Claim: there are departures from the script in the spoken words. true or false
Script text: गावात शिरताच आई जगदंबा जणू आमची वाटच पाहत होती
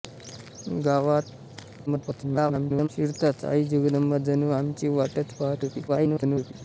true